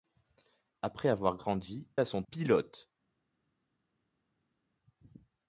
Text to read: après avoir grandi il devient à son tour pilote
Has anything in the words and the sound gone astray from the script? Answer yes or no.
yes